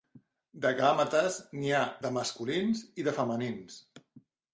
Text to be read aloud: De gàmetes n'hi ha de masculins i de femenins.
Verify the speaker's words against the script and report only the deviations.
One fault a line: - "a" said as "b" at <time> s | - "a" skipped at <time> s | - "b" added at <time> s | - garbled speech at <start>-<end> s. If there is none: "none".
none